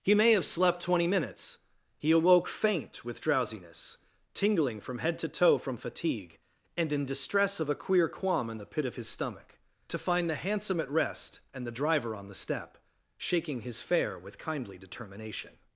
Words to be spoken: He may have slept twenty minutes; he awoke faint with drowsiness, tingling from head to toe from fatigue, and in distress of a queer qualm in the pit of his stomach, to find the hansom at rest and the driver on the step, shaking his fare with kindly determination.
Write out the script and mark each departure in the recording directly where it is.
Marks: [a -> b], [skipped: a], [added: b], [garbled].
He may have slept twenty minutes; he awoke faint with drowsiness, tingling from head to toe from fatigue, and in distress of a queer qualm in the pit of his stomach, to find the hansom at rest and the driver on the step, shaking his fare with kindly determination.